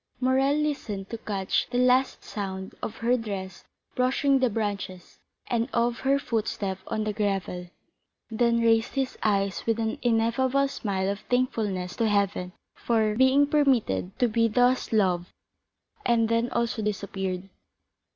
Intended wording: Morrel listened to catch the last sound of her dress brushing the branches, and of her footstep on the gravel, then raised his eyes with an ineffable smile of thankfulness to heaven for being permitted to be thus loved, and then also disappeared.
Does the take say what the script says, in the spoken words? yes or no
yes